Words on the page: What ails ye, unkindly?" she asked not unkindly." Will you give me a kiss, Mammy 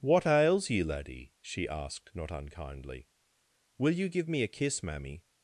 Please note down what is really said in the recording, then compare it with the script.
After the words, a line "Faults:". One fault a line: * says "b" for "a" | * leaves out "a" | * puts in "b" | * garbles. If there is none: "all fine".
What ails ye, laddie?" she asked not unkindly." Will you give me a kiss, Mammy
Faults:
* says "laddie" for "unkindly"